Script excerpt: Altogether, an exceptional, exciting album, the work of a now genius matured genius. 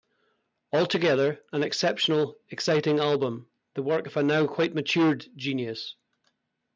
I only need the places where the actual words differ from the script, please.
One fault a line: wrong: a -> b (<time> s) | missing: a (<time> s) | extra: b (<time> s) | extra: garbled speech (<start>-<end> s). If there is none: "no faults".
wrong: genius -> quite (4.4 s)